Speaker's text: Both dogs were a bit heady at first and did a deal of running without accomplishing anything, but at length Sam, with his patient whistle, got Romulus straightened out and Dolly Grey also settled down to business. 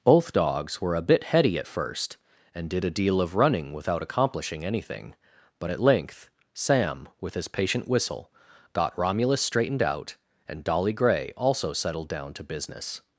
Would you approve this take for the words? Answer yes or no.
yes